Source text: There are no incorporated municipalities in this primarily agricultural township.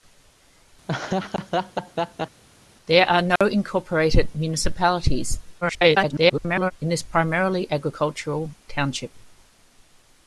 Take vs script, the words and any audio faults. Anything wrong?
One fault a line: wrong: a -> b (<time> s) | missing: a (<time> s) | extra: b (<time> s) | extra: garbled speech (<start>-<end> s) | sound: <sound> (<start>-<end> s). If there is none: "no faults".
sound: laugh (0.9-2.4 s)
sound: dropout (3.4-3.4 s)
extra: garbled speech (5.6-6.7 s)